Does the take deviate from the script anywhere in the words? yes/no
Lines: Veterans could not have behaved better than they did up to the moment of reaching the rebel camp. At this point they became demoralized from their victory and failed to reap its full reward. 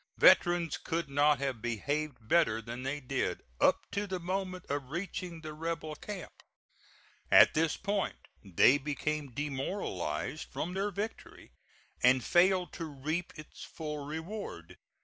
no